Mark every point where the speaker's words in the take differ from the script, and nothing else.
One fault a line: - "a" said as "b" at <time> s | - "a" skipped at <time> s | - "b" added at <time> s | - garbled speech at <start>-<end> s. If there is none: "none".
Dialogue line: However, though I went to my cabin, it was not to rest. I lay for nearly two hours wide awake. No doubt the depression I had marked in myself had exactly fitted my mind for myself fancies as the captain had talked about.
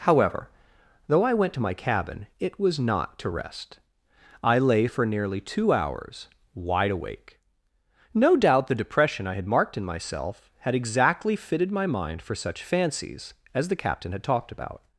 - "myself" said as "such" at 12.3 s